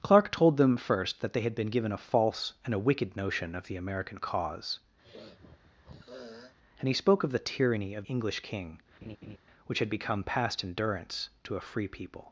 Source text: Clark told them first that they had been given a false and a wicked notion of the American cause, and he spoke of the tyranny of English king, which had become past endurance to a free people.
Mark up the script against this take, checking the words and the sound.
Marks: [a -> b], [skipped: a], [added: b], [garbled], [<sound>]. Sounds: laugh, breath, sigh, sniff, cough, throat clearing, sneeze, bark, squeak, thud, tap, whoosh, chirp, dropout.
Clark told them first that they had been given a false and a wicked notion of the American cause, [sniff] and he spoke of the tyranny of English king, [laugh] which had become past endurance to a free people.